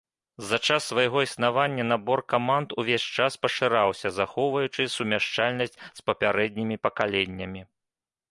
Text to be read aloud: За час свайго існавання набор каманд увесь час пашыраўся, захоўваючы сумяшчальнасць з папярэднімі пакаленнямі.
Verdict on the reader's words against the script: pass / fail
pass